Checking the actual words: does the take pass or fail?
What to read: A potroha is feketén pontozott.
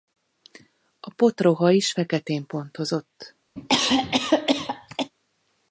pass